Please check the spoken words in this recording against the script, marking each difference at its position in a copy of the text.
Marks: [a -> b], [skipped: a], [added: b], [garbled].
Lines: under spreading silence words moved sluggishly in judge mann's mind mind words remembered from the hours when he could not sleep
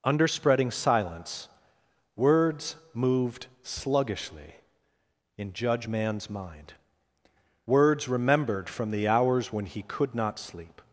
under spreading silence words moved sluggishly in judge mann's mind [skipped: mind] words remembered from the hours when he could not sleep